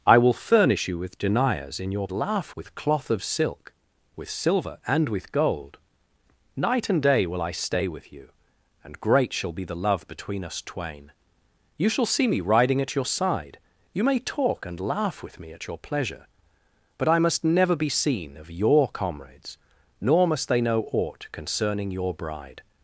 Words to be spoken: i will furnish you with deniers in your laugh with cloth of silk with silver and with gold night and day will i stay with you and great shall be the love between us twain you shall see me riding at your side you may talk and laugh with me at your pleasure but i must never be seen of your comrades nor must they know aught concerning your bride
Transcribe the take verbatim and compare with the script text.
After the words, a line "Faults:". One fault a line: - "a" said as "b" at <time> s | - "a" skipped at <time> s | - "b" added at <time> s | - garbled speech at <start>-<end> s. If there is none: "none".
i will furnish you with deniers in your laugh with cloth of silk with silver and with gold night and day will i stay with you and great shall be the love between us twain you shall see me riding at your side you may talk and laugh with me at your pleasure but i must never be seen of your comrades nor must they know aught concerning your bride
Faults:
none